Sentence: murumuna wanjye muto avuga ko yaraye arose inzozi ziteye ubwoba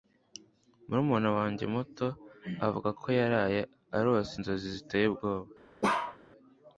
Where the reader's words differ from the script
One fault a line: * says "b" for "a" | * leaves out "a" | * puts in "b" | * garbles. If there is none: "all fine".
all fine